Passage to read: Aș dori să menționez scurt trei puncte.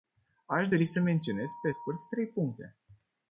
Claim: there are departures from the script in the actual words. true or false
true